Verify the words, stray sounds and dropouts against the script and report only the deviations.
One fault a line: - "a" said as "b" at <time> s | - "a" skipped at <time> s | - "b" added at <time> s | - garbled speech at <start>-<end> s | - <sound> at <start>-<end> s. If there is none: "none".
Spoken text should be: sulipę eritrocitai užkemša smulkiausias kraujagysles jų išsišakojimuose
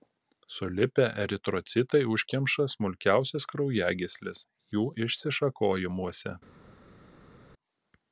none